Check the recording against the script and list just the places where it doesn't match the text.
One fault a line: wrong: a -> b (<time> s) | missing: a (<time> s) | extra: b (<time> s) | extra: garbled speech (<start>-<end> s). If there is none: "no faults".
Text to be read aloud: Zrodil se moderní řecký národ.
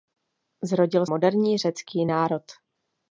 missing: se (1.1 s)